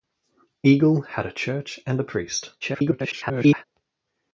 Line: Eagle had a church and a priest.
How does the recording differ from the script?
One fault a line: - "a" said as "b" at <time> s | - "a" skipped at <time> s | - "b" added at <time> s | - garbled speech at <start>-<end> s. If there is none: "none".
- garbled speech at 2.6-3.6 s